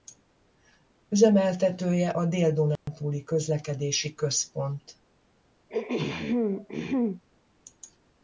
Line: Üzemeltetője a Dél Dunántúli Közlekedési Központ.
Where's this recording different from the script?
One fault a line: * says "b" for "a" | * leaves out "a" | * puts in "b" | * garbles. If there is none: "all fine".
all fine